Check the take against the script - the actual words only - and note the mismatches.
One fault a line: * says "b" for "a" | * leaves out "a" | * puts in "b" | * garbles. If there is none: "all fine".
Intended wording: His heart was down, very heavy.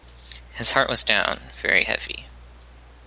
all fine